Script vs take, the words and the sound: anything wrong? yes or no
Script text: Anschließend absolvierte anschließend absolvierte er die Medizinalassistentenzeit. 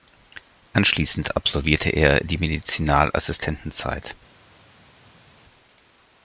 yes